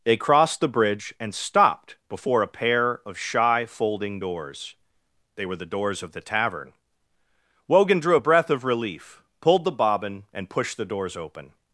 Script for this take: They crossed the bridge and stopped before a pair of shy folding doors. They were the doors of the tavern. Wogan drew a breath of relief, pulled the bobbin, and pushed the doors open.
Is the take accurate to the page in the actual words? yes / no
yes